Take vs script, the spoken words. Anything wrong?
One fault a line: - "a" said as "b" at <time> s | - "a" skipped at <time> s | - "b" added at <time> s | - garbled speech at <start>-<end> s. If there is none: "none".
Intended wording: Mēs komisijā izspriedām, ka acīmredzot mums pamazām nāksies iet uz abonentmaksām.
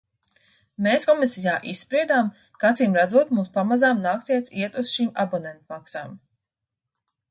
- "šīm" added at 5.0 s